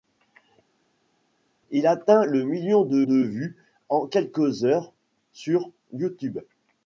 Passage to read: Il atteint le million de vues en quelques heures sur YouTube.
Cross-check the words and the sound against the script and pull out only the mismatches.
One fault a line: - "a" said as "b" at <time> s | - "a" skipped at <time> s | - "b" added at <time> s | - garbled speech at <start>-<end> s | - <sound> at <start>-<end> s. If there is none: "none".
- "de" added at 3.0 s